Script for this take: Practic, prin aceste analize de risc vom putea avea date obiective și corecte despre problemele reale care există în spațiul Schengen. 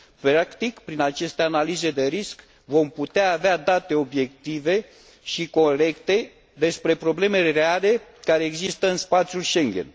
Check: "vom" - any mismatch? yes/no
no